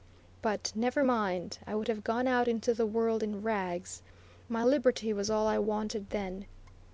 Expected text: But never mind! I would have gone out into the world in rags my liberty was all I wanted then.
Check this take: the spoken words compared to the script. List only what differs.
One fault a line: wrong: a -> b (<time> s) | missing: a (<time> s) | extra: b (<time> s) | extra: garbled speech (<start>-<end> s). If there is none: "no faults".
no faults